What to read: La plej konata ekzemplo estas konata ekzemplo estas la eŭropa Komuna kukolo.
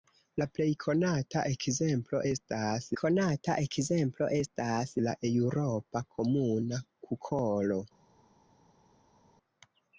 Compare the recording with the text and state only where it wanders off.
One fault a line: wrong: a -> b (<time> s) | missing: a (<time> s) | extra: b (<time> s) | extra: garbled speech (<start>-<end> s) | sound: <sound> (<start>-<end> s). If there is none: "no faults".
no faults